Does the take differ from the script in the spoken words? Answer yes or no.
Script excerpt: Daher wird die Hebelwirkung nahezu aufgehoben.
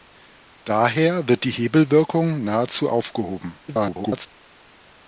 yes